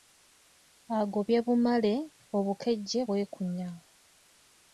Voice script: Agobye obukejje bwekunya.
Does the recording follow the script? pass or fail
fail